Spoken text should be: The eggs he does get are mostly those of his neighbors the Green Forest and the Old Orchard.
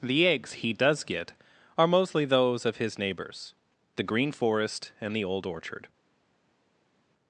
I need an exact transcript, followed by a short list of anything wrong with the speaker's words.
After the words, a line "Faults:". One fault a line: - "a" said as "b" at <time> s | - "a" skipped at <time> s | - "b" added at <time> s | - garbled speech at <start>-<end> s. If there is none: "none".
The eggs he does get are mostly those of his neighbors the Green Forest and the Old Orchard.
Faults:
none